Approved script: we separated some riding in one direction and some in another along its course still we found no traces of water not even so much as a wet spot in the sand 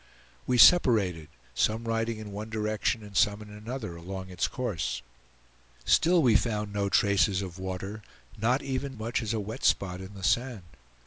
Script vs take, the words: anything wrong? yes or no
yes